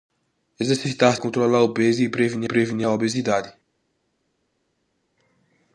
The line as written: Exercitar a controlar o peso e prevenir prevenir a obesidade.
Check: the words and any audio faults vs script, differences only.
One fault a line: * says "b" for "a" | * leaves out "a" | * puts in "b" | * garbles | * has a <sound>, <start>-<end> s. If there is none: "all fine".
all fine